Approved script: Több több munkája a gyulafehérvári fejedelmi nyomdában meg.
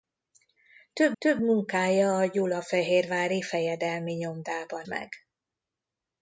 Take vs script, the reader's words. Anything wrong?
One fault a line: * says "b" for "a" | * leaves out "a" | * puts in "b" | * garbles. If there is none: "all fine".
all fine